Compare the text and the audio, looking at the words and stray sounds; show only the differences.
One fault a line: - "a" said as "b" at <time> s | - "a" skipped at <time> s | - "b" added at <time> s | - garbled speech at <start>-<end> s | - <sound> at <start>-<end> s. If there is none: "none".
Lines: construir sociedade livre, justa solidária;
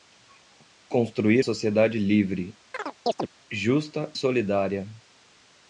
- chirp at 2.7-3.3 s